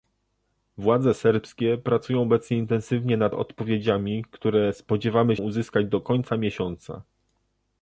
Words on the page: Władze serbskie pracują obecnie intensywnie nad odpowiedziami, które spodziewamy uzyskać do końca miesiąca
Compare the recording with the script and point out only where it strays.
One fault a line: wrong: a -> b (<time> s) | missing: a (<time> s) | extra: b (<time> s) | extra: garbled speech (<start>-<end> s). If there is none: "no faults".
no faults